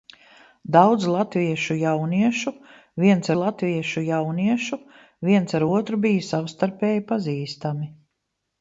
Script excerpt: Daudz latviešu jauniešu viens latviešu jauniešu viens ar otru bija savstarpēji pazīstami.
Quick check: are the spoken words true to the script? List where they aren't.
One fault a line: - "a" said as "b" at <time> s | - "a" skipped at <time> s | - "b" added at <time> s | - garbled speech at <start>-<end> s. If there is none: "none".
none